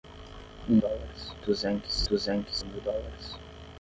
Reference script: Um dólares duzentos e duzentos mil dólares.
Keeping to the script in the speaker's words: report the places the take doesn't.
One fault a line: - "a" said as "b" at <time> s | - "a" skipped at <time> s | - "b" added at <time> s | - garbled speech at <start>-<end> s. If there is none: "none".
none